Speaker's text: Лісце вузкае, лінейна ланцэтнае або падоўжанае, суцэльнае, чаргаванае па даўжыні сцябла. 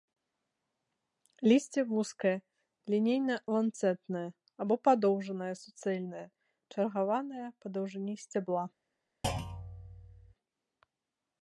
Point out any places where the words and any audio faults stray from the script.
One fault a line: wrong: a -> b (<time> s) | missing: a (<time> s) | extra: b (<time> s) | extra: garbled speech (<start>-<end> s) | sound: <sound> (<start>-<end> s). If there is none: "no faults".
sound: thud (9.2-10.3 s)